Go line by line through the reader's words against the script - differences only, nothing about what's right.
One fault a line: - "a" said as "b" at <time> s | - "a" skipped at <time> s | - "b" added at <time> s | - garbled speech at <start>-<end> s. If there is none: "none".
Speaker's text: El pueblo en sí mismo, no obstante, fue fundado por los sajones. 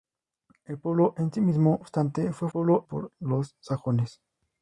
- "no" skipped at 1.8 s
- "fundado" said as "pueblo" at 2.5 s